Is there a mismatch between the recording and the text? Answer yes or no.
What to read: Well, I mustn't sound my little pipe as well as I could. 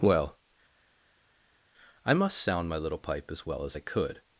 yes